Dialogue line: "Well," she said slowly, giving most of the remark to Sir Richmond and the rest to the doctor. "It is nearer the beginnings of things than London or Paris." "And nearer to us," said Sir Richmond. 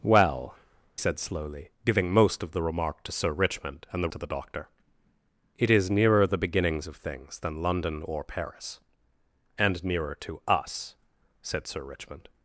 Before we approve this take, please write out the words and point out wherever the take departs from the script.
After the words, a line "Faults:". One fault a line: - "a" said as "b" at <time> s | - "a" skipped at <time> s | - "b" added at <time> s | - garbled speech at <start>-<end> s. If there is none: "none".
"Well," said slowly, giving most of the remark to Sir Richmond and the to the doctor. "It is nearer the beginnings of things than London or Paris." "And nearer to us," said Sir Richmond.
Faults:
- "she" skipped at 0.6 s
- "rest" skipped at 4.1 s